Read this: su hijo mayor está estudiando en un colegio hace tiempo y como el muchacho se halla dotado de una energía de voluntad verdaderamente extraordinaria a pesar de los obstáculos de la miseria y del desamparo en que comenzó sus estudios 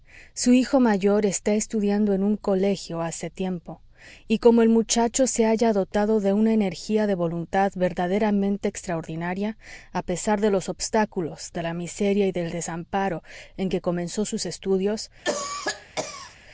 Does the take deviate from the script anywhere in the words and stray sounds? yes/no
yes